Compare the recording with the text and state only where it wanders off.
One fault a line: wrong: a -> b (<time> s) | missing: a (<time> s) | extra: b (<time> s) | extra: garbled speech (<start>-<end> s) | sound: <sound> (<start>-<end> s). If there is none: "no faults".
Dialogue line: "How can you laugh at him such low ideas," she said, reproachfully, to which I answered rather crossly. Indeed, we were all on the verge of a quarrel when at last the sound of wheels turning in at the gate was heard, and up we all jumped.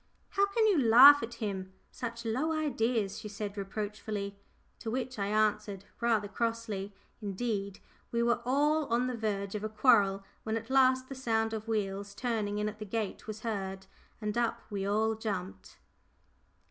no faults